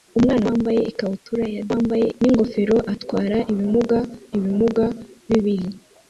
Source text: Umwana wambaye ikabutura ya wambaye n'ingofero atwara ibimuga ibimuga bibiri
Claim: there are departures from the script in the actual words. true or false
false